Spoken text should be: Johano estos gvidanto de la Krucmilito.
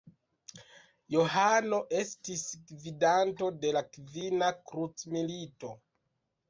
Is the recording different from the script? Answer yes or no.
yes